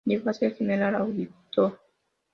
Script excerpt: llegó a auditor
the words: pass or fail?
fail